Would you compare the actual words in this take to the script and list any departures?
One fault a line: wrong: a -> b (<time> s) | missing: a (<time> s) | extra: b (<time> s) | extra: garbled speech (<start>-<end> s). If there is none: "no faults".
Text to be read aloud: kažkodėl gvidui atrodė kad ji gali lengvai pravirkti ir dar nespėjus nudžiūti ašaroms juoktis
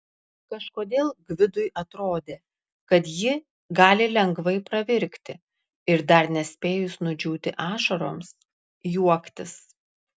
no faults